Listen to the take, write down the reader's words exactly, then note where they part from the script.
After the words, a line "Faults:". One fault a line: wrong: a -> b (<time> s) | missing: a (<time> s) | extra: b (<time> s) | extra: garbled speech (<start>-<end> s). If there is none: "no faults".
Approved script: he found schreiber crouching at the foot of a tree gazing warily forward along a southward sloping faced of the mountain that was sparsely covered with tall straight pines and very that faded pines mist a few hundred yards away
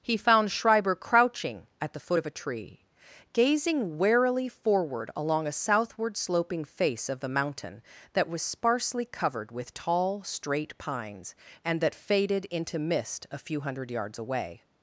he found schreiber crouching at the foot of a tree gazing warily forward along a southward sloping face of the mountain that was sparsely covered with tall straight pines and that faded into mist a few hundred yards away
Faults:
wrong: faced -> face (6.6 s)
missing: very (11.8 s)
wrong: pines -> into (12.5 s)